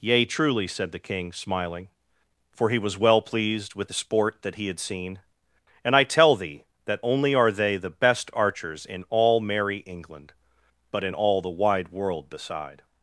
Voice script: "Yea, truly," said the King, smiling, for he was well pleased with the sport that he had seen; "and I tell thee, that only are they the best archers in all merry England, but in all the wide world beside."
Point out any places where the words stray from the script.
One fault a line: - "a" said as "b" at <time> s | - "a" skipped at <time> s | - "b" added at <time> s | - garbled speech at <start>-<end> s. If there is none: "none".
none